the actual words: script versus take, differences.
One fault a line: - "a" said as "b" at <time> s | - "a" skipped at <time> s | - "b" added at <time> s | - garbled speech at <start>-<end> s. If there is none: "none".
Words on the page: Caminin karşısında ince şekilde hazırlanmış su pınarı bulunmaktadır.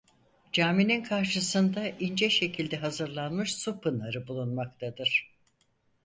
none